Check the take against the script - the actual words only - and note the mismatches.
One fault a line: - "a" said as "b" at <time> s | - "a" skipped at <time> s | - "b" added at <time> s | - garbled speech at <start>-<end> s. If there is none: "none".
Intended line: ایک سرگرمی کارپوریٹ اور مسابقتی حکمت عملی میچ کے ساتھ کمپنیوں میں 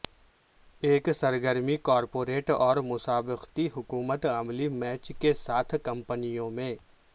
none